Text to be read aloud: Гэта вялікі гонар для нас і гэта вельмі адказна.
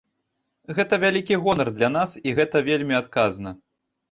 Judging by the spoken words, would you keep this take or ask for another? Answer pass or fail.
pass